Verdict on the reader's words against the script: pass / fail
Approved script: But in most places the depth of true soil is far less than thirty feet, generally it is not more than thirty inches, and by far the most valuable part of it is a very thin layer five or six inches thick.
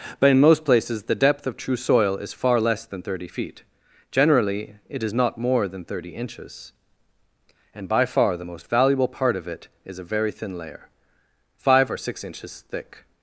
pass